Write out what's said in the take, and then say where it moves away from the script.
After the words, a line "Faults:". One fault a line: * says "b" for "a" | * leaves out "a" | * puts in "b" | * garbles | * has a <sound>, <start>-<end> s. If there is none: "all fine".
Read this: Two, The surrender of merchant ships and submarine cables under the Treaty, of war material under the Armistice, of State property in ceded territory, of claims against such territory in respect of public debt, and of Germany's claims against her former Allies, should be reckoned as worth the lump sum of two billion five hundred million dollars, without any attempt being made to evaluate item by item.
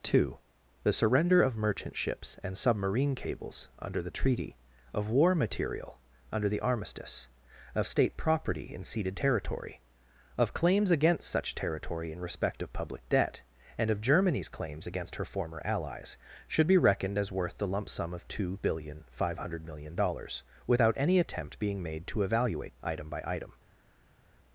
Two, The surrender of merchant ships and submarine cables under the Treaty, of war material under the Armistice, of State property in ceded territory, of claims against such territory in respect of public debt, and of Germany's claims against her former Allies, should be reckoned as worth the lump sum of two billion five hundred million dollars, without any attempt being made to evaluate item by item.
Faults:
all fine